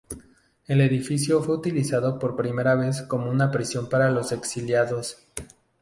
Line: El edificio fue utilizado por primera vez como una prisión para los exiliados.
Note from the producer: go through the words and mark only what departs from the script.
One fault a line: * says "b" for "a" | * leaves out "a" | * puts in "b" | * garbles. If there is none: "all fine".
all fine